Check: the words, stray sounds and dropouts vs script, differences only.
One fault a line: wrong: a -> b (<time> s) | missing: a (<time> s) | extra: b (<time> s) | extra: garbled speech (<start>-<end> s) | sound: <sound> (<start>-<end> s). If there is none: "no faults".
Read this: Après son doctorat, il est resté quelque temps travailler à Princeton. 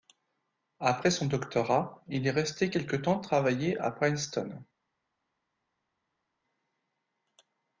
no faults